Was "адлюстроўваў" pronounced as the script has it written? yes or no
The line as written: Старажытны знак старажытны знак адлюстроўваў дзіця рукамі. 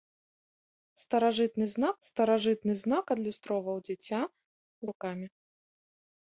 yes